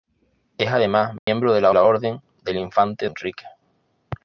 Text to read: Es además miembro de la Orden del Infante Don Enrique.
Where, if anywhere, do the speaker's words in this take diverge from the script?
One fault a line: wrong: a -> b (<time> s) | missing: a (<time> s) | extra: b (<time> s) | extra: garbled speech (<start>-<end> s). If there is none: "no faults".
extra: la (1.7 s)
missing: Don (3.1 s)